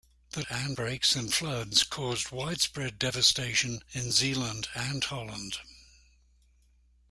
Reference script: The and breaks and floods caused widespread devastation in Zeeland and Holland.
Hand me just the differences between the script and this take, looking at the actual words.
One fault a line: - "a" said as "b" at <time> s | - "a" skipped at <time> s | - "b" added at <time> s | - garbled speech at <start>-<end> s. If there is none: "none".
none